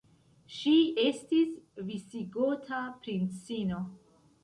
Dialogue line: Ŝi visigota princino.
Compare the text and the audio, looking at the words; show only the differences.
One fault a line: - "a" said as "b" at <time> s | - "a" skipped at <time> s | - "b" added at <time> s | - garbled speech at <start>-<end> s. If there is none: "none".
- "estis" added at 1.0 s